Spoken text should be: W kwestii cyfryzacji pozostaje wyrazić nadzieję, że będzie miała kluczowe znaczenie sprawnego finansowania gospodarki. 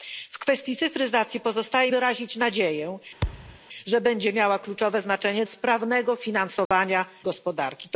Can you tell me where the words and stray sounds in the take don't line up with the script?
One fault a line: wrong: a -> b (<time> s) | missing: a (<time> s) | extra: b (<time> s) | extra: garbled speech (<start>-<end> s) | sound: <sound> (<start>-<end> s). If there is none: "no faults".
sound: thud (3.2-3.6 s)
sound: dropout (6.7-6.7 s)